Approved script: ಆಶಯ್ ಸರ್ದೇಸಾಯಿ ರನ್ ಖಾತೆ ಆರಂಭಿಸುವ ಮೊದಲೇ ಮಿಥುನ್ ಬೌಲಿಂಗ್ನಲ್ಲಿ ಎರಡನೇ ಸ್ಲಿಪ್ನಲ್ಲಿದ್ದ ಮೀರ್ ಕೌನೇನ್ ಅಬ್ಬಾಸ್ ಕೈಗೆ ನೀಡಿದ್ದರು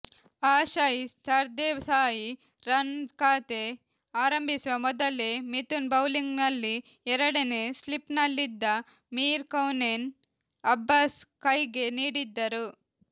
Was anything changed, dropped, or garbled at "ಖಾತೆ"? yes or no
no